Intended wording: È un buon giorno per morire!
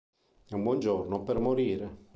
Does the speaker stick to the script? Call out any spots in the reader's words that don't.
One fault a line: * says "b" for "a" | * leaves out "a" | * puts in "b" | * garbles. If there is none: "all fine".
all fine